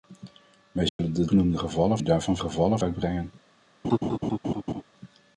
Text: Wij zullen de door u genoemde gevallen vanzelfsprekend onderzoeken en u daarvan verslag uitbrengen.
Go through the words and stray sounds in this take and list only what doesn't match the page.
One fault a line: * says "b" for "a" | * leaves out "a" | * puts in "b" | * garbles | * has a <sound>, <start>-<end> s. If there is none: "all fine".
* has a dropout, 0.9-1.0 s
* leaves out "door u"
* leaves out "vanzelfsprekend onderzoeken en"
* says "gevallen" for "verslag"
* has a laugh, 3.8-4.8 s